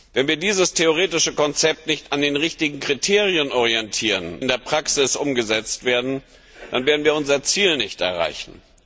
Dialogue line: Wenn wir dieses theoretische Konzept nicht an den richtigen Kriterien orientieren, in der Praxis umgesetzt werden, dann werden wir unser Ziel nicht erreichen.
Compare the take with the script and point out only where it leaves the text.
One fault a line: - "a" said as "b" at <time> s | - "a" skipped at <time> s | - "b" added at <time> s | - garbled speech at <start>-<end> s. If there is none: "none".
none